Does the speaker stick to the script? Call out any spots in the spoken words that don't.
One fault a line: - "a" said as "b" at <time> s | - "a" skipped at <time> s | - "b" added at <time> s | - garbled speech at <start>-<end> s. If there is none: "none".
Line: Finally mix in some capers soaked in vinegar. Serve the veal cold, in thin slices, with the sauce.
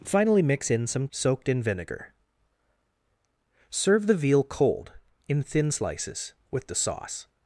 - "capers" skipped at 1.1 s